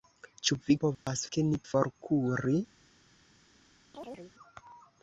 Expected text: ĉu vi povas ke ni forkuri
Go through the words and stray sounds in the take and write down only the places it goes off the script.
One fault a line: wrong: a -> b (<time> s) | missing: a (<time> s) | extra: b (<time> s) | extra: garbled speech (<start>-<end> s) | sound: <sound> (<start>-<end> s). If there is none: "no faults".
sound: dropout (0.9-1.1 s)
sound: chirp (3.9-4.3 s)